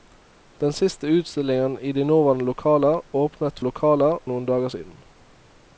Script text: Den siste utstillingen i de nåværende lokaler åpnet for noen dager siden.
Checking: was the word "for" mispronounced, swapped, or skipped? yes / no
yes